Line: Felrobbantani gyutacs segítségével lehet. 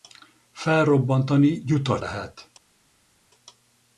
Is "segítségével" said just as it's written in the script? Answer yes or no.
no